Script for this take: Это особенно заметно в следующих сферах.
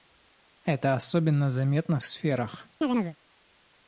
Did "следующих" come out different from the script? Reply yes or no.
yes